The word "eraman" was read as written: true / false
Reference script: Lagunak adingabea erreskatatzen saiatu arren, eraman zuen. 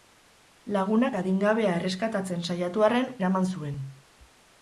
true